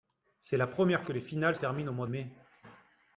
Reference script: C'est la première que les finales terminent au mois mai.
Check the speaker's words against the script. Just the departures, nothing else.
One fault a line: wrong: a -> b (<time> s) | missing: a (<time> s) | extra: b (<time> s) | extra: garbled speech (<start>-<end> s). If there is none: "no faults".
no faults